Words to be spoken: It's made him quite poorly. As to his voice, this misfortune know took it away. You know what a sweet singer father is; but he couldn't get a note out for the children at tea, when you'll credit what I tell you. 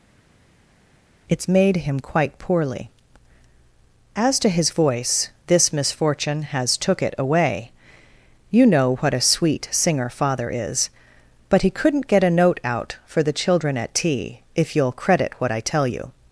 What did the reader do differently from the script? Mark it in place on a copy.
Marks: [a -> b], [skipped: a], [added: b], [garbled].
It's made him quite poorly. As to his voice, this misfortune [know -> has] took it away. You know what a sweet singer father is; but he couldn't get a note out for the children at tea, [when -> if] you'll credit what I tell you.